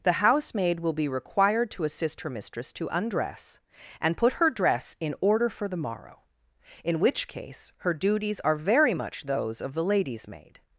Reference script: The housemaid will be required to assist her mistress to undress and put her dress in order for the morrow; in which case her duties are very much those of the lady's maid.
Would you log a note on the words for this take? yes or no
no